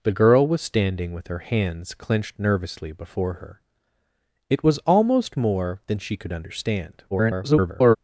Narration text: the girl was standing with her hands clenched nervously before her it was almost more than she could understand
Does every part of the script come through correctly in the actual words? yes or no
no